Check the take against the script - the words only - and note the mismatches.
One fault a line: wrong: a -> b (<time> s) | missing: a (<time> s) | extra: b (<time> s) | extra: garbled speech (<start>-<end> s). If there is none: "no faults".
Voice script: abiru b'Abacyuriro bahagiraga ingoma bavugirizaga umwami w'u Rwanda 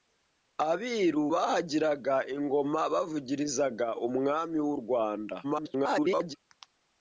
missing: b'Abacyuriro (1.2 s)
extra: garbled speech (5.4-6.4 s)